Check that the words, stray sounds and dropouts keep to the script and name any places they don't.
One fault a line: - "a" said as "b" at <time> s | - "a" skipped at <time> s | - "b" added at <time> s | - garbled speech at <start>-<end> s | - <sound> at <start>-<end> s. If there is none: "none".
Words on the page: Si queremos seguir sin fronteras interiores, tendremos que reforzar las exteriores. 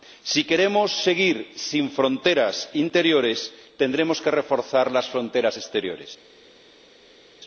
- "fronteras" added at 5.1 s